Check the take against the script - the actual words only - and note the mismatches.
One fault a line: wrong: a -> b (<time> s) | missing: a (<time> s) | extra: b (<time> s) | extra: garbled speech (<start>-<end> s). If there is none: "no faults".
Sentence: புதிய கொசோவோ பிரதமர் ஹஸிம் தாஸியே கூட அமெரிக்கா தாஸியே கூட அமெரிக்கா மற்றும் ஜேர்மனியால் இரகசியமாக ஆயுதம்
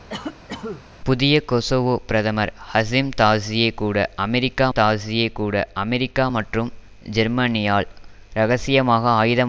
no faults